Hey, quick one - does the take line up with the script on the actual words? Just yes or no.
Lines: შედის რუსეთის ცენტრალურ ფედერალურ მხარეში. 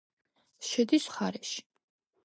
no